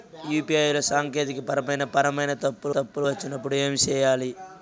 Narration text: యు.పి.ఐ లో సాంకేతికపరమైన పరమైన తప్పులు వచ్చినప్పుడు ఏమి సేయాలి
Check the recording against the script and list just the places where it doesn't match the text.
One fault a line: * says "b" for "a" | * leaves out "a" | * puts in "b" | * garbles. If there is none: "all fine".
* puts in "తప్పులు"